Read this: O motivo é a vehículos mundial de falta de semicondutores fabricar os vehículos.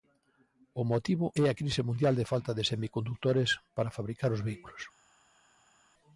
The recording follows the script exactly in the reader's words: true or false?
false